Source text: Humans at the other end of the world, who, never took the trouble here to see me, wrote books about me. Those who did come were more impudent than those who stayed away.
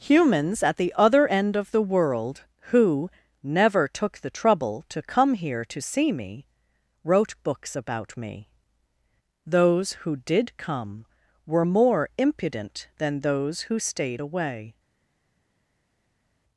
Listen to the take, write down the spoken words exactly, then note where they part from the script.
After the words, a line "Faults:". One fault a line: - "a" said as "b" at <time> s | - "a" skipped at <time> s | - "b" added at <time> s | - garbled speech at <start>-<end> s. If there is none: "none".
Humans at the other end of the world, who, never took the trouble to come here to see me, wrote books about me. Those who did come were more impudent than those who stayed away.
Faults:
- "to come" added at 4.9 s